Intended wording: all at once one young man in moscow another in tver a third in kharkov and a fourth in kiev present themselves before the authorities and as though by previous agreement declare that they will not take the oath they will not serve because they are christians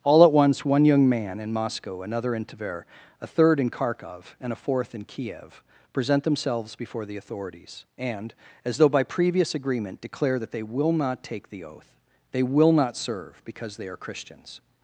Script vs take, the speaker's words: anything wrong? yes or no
no